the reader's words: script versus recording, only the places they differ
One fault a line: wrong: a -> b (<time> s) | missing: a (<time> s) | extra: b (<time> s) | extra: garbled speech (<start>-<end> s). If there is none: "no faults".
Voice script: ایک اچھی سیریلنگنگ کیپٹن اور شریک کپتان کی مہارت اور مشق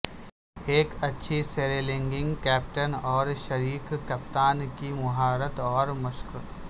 no faults